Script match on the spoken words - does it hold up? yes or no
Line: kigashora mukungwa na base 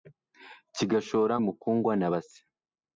yes